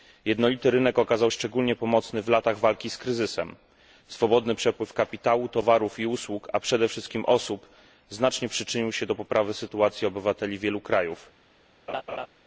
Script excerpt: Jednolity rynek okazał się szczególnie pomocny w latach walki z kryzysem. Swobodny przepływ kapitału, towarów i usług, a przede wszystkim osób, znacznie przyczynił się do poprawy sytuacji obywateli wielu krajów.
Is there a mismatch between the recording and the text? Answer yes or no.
yes